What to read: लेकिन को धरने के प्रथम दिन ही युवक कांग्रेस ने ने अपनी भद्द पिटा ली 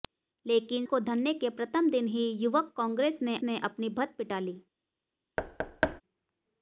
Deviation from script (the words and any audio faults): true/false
true